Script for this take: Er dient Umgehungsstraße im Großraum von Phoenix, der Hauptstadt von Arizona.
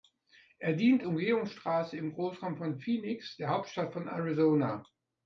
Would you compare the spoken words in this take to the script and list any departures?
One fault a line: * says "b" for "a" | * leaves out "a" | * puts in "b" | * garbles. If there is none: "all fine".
all fine